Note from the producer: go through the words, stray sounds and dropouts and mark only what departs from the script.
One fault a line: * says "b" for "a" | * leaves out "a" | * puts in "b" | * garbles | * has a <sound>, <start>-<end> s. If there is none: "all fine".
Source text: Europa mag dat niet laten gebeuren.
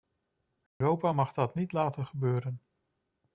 * has a dropout, 0.7-0.8 s